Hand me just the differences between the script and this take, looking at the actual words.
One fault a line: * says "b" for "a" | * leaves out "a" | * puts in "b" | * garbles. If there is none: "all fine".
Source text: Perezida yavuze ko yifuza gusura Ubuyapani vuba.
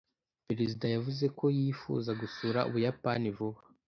all fine